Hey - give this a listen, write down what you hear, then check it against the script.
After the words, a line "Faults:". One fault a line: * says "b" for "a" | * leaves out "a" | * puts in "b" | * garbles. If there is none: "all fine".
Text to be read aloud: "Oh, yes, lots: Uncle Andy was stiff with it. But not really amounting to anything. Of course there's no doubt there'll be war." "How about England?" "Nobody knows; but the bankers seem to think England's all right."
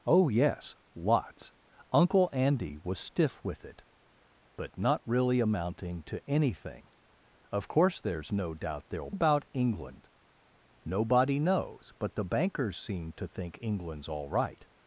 "Oh, yes, lots: Uncle Andy was stiff with it. But not really amounting to anything. Of course there's no doubt there'll about England?" "Nobody knows; but the bankers seem to think England's all right."
Faults:
* leaves out "be war How"